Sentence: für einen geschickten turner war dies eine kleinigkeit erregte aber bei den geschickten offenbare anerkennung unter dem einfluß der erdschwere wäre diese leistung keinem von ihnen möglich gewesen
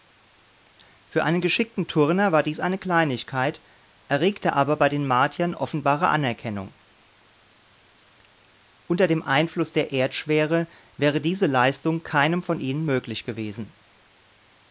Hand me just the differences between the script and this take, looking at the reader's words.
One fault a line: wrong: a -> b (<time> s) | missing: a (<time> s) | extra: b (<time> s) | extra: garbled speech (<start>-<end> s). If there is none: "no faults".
wrong: geschickten -> martiern (5.0 s)